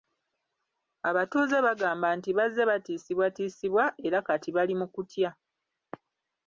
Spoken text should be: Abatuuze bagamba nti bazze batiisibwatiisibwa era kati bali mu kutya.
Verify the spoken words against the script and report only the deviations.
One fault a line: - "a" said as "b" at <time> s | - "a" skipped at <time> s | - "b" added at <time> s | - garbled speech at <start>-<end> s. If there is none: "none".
none